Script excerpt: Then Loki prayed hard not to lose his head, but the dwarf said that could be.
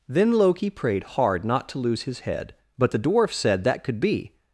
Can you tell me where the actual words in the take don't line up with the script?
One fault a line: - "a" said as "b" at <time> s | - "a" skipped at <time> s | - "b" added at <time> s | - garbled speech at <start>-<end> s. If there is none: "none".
none